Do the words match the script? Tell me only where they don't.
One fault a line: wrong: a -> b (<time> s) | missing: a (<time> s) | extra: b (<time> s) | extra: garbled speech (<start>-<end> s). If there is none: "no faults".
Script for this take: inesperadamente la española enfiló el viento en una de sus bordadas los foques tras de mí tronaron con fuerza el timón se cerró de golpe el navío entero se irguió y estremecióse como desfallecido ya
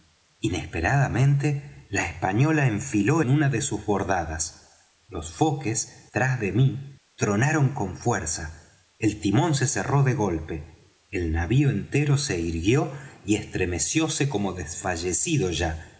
missing: el viento (3.2 s)